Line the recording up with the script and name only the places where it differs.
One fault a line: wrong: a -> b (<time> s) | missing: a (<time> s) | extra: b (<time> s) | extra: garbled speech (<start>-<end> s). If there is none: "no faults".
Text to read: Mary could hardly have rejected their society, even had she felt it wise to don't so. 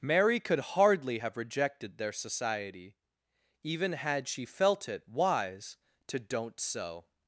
no faults